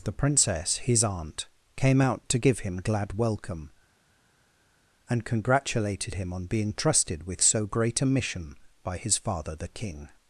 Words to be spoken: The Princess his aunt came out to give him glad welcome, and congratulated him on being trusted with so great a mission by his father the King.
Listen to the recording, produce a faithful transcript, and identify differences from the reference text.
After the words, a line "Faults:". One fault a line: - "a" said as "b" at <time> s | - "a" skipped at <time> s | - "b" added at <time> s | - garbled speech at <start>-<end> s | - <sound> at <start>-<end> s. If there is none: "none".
The Princess his aunt came out to give him glad welcome, and congratulated him on being trusted with so great a mission by his father the King.
Faults:
none